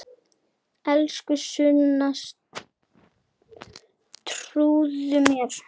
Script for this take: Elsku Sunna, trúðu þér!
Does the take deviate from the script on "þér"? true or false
true